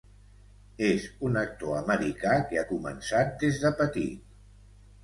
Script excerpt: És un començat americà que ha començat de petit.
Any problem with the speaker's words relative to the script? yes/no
yes